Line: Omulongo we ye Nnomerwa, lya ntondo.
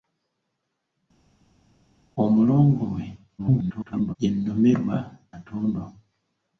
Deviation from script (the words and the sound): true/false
true